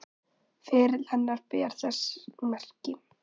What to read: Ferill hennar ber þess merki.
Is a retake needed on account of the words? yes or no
no